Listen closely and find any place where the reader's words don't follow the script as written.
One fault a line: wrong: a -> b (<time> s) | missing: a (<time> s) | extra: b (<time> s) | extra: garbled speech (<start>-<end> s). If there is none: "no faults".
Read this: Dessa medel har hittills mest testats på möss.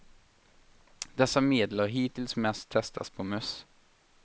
no faults